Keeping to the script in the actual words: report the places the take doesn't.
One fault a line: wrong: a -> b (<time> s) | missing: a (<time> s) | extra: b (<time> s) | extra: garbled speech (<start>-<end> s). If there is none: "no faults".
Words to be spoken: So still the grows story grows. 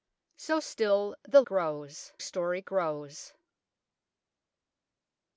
no faults